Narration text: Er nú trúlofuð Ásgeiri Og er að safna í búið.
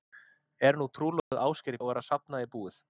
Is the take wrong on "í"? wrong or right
right